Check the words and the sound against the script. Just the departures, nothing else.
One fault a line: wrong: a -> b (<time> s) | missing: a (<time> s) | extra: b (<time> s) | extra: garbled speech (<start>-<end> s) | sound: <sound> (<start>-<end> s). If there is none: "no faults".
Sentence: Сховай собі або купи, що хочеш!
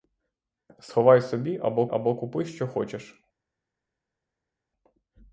extra: або (1.9 s)